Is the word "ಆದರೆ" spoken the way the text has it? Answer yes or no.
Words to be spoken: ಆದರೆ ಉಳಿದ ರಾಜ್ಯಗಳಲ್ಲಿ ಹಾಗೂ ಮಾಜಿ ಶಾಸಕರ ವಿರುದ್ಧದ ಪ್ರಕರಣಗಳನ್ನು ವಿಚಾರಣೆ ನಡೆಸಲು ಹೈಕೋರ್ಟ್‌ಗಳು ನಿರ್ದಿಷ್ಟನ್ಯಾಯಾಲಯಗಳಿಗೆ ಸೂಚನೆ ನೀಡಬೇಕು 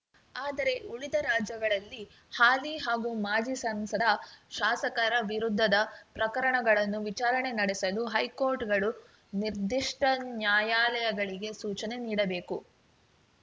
yes